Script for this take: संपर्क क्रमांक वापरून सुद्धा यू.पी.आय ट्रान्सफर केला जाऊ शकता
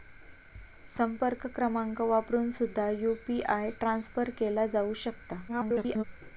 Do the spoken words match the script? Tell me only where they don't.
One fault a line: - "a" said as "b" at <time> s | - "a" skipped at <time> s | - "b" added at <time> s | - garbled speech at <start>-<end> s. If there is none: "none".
- garbled speech at 5.5-6.0 s